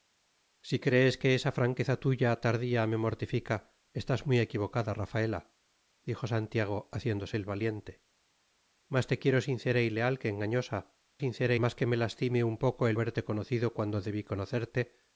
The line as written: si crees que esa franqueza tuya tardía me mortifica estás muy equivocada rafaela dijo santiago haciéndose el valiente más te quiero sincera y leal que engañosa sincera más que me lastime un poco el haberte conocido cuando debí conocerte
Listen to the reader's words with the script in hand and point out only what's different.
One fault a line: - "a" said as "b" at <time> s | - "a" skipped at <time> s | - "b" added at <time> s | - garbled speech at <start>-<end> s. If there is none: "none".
none